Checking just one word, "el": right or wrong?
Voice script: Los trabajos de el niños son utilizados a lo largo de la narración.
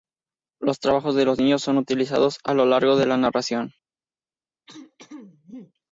wrong